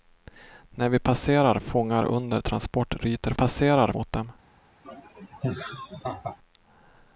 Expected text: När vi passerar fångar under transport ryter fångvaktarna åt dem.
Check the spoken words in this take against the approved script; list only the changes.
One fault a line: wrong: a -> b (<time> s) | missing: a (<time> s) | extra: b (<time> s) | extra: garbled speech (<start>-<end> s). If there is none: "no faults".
wrong: fångvaktarna -> passerar (3.3 s)